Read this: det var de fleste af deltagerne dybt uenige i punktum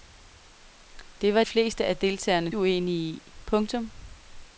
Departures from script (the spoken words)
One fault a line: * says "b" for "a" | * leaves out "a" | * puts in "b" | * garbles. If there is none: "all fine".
* leaves out "de"
* leaves out "dybt"